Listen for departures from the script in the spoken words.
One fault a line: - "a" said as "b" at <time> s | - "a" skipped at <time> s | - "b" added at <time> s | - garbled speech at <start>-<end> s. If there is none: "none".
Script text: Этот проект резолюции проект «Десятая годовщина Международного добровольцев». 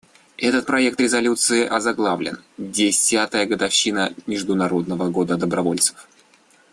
- "проект" said as "озаглавлен" at 1.7 s
- "года" added at 5.1 s